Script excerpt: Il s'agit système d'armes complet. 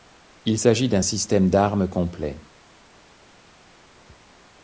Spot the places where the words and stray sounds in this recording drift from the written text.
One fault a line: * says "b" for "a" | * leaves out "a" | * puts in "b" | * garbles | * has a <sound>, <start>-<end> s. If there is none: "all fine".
* puts in "d'un"